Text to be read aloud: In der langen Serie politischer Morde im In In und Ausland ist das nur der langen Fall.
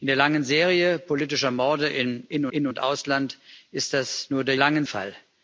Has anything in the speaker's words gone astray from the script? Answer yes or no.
no